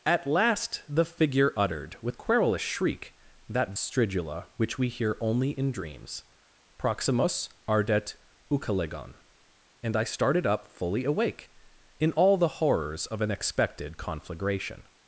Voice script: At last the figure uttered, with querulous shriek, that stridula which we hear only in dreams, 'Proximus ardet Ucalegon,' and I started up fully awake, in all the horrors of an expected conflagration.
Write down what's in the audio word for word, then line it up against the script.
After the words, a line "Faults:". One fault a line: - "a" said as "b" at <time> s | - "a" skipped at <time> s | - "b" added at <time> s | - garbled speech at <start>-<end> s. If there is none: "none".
At last the figure uttered, with querulous shriek, that stridula which we hear only in dreams, 'Proximus ardet Ucalegon,' and I started up fully awake, in all the horrors of an expected conflagration.
Faults:
none